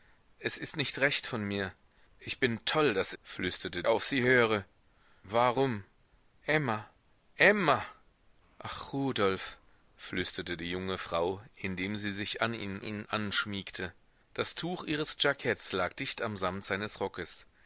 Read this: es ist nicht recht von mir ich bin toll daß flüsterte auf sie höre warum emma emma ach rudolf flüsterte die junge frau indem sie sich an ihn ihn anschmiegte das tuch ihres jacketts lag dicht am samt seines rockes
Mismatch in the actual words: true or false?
false